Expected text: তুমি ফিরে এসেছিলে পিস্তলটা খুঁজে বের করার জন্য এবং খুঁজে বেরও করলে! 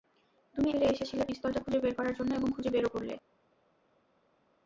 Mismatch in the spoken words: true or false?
false